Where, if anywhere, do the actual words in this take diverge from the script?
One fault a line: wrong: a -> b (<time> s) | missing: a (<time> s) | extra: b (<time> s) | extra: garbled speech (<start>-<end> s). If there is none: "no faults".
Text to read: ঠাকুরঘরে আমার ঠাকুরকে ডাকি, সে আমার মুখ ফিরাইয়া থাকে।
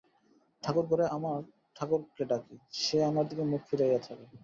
extra: দিকে (3.3 s)